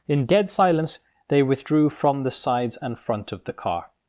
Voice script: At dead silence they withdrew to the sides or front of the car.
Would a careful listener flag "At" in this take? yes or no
yes